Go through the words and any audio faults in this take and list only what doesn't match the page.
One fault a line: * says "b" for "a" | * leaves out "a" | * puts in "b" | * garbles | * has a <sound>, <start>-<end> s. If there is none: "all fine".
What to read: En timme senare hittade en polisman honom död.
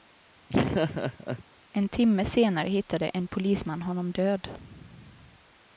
* has a laugh, 0.5-1.4 s